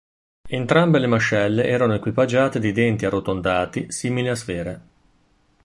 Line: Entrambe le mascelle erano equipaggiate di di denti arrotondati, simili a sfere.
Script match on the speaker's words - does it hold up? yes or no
no